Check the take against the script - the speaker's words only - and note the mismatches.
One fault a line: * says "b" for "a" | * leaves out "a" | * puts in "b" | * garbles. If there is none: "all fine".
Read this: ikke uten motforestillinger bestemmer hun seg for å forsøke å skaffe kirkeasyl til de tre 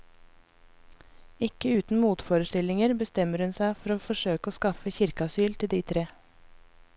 all fine